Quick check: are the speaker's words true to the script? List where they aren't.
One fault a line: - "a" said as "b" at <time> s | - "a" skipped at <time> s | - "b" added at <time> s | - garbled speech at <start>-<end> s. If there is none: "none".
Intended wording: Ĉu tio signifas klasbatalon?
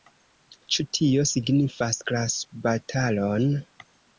none